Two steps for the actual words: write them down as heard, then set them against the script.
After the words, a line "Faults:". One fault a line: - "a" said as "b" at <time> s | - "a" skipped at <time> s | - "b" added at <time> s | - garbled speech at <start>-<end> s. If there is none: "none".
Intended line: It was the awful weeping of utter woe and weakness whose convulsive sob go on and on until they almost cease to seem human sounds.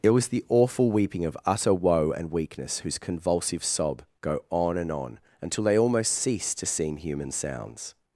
It was the awful weeping of utter woe and weakness whose convulsive sob go on and on until they almost cease to seem human sounds.
Faults:
none